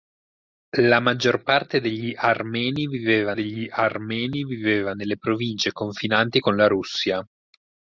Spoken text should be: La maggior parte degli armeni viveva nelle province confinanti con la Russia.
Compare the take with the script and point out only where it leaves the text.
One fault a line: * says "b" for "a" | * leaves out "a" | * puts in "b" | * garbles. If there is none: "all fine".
* puts in "degli armeni viveva"